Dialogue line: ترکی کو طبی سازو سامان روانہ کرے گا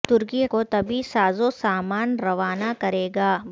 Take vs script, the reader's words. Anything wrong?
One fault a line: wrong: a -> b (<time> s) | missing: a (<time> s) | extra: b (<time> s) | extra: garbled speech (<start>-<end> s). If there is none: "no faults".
no faults